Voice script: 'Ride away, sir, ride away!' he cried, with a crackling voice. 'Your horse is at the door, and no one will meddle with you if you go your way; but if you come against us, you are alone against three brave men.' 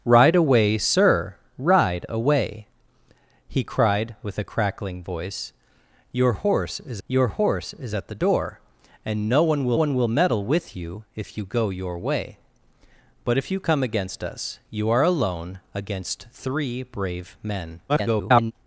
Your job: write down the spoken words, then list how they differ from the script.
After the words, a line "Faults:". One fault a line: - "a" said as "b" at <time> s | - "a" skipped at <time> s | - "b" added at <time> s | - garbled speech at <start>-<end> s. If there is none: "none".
'Ride away, sir, ride away!' he cried, with a crackling voice. 'Your horse is your horse is at the door, and no one will one will meddle with you if you go your way; but if you come against us, you are alone against three brave men.' [garbled]
Faults:
- "your horse is" added at 7.1 s
- "one will" added at 9.7 s
- garbled speech at 17.9-18.5 s